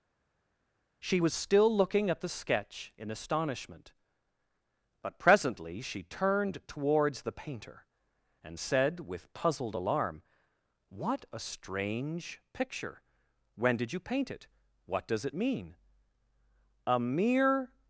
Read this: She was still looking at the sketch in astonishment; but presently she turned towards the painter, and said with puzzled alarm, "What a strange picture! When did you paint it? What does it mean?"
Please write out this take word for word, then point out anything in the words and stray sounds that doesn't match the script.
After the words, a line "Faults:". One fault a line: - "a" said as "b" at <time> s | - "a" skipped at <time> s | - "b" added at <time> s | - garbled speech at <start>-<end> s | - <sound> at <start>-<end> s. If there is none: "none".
She was still looking at the sketch in astonishment; but presently she turned towards the painter, and said with puzzled alarm, "What a strange picture! When did you paint it? What does it mean?" "A mere
Faults:
- "A mere" added at 16.9 s